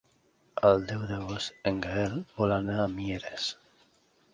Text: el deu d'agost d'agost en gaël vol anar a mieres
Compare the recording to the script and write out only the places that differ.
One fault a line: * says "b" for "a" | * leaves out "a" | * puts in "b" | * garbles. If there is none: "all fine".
* leaves out "d'agost"